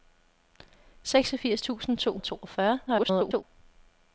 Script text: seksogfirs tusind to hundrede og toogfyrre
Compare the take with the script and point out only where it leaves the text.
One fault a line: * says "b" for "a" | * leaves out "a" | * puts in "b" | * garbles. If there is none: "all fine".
* leaves out "hundrede"
* garbles